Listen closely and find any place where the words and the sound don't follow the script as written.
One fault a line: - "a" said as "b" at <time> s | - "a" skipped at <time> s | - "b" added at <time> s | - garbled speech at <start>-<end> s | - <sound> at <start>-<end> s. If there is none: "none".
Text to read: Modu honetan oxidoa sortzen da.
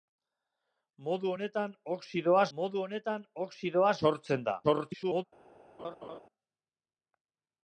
- "modu honetan oxidoa" added at 2.6 s
- garbled speech at 4.6-5.2 s
- laugh at 5.8-6.2 s